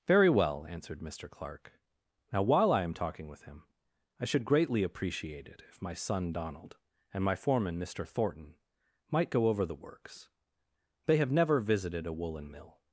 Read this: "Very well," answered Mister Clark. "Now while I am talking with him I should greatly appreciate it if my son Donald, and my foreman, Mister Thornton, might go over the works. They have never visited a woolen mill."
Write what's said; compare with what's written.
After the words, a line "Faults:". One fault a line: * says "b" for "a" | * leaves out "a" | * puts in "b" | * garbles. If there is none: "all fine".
"Very well," answered Mister Clark. "Now while I am talking with him I should greatly appreciate it if my son Donald, and my foreman, Mister Thornton, might go over the works. They have never visited a woolen mill."
Faults:
all fine